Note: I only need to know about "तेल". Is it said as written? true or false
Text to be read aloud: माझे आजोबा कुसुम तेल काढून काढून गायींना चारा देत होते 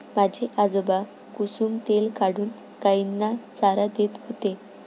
true